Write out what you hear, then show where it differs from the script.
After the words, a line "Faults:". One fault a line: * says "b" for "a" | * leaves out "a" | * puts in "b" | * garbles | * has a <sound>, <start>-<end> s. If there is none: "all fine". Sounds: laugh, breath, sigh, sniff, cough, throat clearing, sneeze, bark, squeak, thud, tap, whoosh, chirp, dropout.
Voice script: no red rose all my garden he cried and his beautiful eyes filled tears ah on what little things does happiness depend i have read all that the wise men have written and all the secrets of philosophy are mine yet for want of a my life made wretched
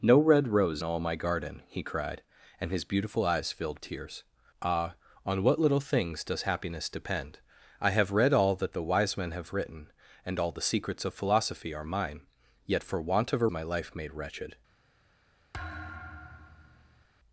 no red rose all my garden he cried and his beautiful eyes filled tears ah on what little things does happiness depend i have read all that the wise men have written and all the secrets of philosophy are mine yet for want of a my life made wretched
Faults:
* has a thud, 15.5-17.1 s